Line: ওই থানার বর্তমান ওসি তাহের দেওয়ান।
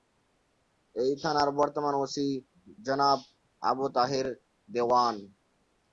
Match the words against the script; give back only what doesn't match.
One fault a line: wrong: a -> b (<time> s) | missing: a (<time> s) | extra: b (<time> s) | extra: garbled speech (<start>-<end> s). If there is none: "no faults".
wrong: ওই -> এই (0.9 s)
extra: জনাব আবু (2.8 s)